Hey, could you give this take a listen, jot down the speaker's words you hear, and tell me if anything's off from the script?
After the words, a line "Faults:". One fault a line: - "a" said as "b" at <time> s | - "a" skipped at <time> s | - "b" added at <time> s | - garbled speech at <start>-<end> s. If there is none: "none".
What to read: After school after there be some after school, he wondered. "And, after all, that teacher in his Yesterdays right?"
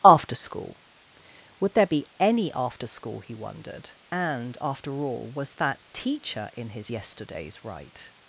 After school would there be any after school, he wondered. "And, after all, was that teacher in his Yesterdays right?"
Faults:
- "after" said as "would" at 1.6 s
- "some" said as "any" at 2.2 s
- "was" added at 5.3 s